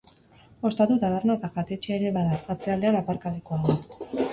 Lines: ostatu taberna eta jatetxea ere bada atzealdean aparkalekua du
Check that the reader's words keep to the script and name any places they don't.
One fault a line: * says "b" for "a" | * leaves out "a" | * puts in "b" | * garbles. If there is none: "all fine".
all fine